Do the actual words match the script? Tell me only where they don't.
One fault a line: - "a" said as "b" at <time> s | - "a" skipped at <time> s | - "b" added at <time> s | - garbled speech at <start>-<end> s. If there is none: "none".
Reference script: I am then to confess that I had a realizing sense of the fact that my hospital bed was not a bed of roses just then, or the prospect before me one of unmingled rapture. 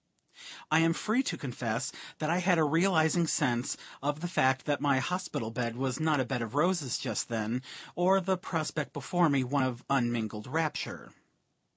- "then" said as "free" at 0.9 s